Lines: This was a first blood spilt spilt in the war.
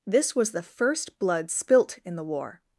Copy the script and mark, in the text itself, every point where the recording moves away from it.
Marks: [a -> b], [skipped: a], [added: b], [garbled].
This was [a -> the] first blood spilt [skipped: spilt] in the war.